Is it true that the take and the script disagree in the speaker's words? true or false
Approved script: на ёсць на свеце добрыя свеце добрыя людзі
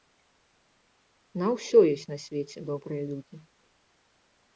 true